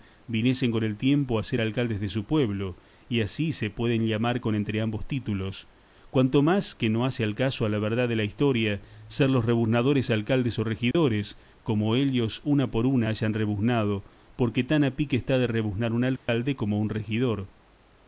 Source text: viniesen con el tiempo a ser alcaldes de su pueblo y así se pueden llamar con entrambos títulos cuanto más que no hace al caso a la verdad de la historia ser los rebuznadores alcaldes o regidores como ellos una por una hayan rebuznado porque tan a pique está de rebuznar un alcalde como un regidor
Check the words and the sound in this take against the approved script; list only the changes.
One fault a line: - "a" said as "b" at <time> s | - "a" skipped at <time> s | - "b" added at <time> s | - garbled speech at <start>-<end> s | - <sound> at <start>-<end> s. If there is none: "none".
- dropout at 10.9-10.9 s
- dropout at 16.2-16.3 s